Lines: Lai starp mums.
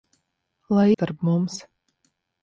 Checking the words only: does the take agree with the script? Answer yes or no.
yes